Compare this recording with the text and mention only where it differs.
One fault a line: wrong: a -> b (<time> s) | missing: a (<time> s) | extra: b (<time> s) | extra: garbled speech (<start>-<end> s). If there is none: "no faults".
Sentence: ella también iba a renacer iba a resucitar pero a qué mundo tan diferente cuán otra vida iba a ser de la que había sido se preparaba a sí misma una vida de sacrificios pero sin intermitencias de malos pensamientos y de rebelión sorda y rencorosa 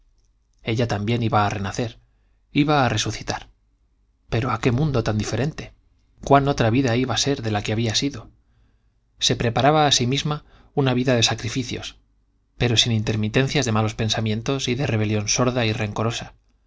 no faults